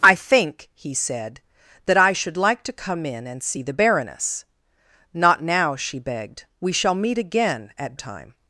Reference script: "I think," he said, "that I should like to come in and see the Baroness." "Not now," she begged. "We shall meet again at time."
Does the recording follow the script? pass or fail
pass